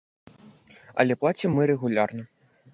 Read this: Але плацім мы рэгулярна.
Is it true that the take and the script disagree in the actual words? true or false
false